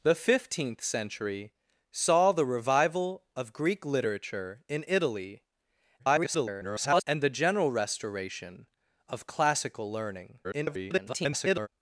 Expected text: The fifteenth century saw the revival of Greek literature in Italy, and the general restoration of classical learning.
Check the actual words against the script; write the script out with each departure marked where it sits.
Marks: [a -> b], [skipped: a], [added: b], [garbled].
The fifteenth century saw the revival of Greek literature in Italy, [garbled] and the general restoration of classical learning. [garbled]